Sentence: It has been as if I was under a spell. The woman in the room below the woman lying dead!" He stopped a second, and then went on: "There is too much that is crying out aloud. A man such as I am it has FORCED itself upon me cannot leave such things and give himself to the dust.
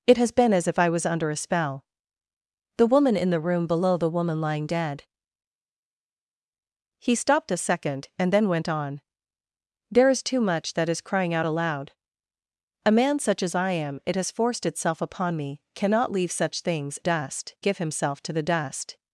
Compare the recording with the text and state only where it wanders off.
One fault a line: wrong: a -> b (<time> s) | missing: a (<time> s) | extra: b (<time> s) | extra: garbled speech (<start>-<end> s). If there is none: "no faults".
wrong: and -> dust (17.0 s)